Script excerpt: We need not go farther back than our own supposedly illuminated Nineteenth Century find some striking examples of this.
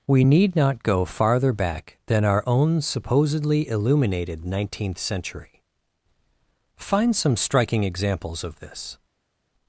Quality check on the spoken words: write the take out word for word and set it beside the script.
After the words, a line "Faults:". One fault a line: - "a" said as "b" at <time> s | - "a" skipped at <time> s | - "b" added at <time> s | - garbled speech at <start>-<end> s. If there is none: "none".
We need not go farther back than our own supposedly illuminated Nineteenth Century find some striking examples of this.
Faults:
none